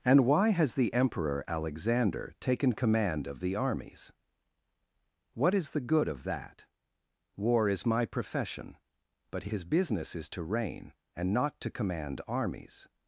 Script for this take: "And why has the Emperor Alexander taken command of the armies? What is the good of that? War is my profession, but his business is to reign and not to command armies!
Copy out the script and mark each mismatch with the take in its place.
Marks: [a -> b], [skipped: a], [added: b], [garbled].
"And why has the Emperor Alexander taken command of the armies? What is the good of that? War is my profession, but his business is to reign and not to command armies!